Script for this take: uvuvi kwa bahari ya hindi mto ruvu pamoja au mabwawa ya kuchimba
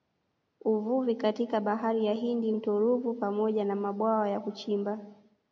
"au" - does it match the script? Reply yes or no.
no